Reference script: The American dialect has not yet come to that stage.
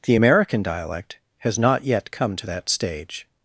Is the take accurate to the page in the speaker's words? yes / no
yes